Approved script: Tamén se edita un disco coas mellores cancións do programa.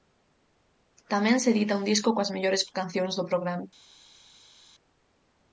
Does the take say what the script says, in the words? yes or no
yes